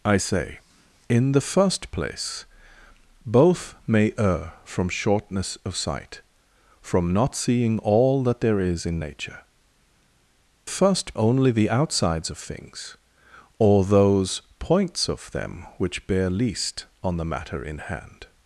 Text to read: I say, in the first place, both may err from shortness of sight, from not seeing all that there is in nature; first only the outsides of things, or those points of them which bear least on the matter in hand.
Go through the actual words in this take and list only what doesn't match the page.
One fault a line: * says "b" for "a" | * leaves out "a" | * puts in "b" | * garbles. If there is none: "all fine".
all fine